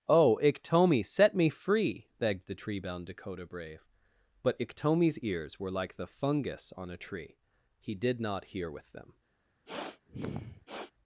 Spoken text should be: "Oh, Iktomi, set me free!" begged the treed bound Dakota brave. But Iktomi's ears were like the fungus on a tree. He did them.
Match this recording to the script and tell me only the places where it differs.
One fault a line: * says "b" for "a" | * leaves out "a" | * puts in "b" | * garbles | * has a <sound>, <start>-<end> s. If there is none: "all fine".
* says "tree" for "treed"
* puts in "not hear with"
* has a sniff, 9.7-10.9 s